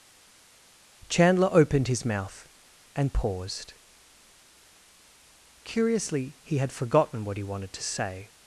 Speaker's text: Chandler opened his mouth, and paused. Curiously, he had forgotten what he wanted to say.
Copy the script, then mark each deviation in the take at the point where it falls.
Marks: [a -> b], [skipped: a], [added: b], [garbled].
Chandler opened his mouth, and paused. Curiously, he had forgotten what he wanted to say.